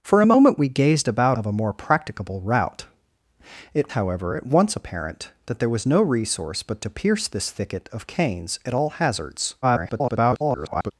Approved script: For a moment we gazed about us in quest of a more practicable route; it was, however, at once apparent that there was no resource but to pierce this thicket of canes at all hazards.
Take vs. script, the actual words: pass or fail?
fail